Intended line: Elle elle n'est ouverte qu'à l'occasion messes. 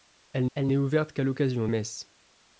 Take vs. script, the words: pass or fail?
pass